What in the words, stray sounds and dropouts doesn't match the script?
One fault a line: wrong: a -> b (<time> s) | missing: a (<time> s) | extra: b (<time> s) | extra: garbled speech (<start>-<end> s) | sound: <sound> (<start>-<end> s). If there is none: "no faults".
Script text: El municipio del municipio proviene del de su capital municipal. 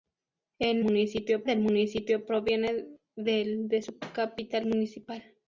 no faults